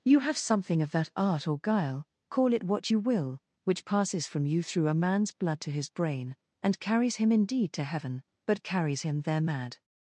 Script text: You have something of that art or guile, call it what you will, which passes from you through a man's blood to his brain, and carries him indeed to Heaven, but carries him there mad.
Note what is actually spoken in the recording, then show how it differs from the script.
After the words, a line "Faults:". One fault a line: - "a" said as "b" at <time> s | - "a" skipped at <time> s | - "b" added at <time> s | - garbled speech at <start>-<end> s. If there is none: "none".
You have something of that art or guile, call it what you will, which passes from you through a man's blood to his brain, and carries him indeed to Heaven, but carries him there mad.
Faults:
none